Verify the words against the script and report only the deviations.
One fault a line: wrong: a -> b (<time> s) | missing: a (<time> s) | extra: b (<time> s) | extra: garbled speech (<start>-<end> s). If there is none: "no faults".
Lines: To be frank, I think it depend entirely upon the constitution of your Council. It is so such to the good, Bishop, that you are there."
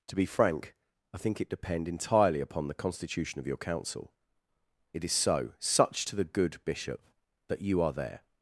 no faults